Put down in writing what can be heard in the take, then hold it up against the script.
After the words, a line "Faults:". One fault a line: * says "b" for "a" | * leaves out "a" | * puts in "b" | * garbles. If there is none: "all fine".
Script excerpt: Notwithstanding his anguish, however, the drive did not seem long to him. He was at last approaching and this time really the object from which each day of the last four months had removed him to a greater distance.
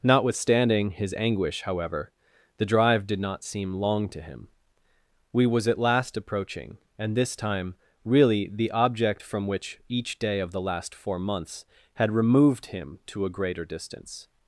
Notwithstanding his anguish, however, the drive did not seem long to him. We was at last approaching and this time really the object from which each day of the last four months had removed him to a greater distance.
Faults:
* says "We" for "He"